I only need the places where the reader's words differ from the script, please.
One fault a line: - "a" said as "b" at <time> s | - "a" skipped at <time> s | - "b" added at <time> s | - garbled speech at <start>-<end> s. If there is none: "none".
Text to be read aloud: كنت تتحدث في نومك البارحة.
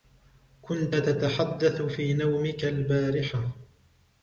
none